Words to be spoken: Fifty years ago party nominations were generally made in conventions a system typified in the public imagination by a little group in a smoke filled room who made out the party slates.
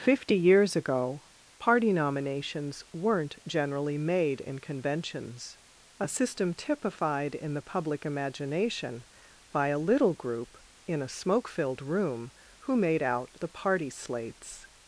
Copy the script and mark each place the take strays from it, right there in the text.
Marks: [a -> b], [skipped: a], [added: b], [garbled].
Fifty years ago party nominations [were -> weren't] generally made in conventions a system typified in the public imagination by a little group in a smoke filled room who made out the party slates.